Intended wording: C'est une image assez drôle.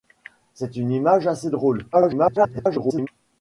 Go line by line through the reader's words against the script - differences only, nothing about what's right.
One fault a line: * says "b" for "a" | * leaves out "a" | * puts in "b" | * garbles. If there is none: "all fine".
* garbles